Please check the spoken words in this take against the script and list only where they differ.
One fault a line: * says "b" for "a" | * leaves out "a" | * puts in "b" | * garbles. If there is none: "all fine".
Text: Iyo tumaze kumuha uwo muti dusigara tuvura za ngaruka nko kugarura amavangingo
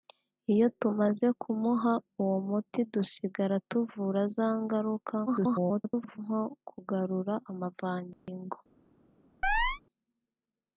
* garbles